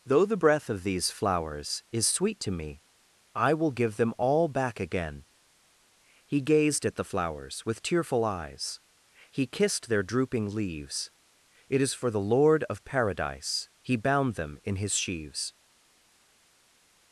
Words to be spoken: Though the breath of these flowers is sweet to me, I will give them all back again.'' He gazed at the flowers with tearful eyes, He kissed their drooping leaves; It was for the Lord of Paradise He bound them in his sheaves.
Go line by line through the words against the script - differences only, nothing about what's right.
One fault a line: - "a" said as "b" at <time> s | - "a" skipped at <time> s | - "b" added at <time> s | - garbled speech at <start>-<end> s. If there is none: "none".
- "was" said as "is" at 11.8 s